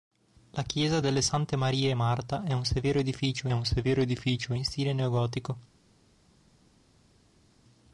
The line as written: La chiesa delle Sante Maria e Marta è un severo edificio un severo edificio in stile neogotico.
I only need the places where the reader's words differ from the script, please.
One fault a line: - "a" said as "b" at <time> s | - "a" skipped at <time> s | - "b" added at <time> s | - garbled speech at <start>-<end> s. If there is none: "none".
none